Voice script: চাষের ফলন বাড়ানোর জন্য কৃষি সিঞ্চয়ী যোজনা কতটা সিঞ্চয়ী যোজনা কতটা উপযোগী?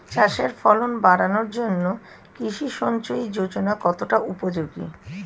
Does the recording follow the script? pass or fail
fail